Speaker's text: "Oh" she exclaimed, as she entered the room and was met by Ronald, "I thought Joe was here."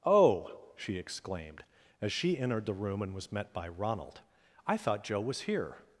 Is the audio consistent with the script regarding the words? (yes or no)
yes